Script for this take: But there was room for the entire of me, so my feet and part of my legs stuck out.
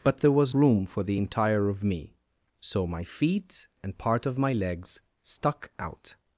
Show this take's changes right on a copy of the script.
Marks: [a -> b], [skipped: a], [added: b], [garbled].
But there was room for the entire of me, so my feet and part of my legs stuck out.